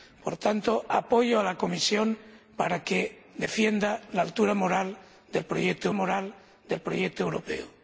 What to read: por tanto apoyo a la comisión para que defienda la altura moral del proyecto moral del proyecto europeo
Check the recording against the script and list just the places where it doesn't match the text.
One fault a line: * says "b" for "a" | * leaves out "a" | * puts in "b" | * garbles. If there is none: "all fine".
all fine